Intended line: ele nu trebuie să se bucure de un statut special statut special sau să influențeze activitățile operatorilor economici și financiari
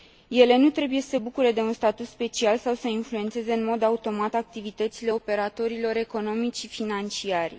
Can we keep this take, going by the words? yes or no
no